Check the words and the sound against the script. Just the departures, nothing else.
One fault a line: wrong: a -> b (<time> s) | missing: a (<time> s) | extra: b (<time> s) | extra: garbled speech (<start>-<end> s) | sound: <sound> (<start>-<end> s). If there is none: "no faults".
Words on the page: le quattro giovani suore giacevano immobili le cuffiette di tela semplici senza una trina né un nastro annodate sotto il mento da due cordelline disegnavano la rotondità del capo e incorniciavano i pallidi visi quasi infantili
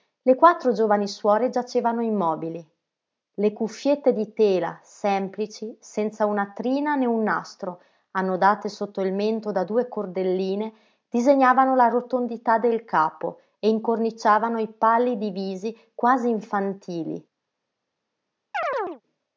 sound: chirp (18.5-19.0 s)